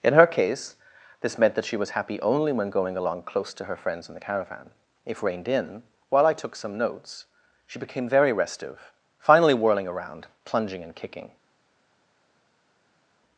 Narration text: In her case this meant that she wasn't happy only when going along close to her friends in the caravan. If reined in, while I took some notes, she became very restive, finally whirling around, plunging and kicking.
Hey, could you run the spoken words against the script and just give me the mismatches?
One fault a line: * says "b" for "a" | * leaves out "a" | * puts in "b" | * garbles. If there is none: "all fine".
* says "was" for "wasn't"